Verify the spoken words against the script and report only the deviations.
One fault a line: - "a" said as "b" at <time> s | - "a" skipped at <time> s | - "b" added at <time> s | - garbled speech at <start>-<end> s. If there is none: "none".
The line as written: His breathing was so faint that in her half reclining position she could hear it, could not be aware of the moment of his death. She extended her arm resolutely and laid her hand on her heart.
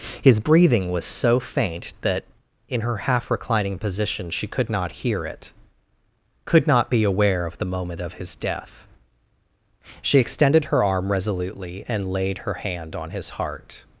- "not" added at 4.7 s
- "her" said as "his" at 13.1 s